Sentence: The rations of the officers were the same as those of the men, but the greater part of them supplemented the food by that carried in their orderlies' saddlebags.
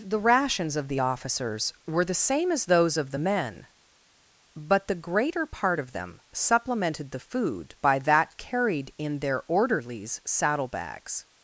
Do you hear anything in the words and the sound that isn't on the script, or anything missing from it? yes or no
no